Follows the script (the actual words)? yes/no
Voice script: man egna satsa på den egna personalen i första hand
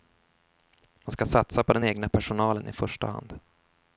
no